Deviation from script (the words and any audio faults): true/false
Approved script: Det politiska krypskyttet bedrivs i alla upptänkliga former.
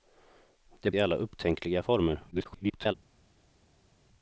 true